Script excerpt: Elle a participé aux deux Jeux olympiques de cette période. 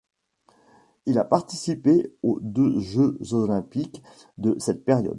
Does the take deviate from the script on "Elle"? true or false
true